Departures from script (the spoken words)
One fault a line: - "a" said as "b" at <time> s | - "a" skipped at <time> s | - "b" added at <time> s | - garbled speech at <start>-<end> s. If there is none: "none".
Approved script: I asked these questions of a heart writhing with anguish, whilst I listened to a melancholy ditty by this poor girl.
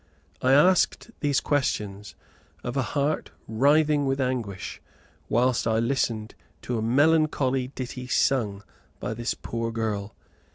- "sung" added at 8.1 s